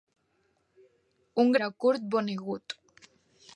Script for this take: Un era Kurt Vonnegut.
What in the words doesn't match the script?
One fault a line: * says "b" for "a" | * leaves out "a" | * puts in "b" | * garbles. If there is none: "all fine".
all fine